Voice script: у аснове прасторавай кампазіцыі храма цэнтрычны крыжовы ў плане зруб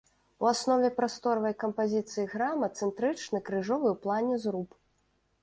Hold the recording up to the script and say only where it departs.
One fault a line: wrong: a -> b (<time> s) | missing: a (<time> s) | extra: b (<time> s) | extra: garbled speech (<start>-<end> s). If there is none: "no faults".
no faults